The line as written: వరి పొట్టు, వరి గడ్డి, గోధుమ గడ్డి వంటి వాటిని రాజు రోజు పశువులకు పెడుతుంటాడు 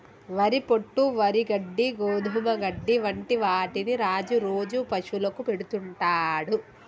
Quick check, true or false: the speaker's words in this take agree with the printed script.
true